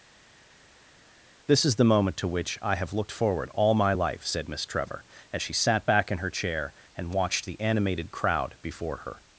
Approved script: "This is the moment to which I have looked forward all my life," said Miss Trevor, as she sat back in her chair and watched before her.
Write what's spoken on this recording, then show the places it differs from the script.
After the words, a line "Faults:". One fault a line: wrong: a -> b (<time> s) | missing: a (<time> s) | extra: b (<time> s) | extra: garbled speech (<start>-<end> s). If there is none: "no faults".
"This is the moment to which I have looked forward all my life," said Miss Trevor, as she sat back in her chair and watched the animated crowd before her.
Faults:
extra: the animated crowd (7.5 s)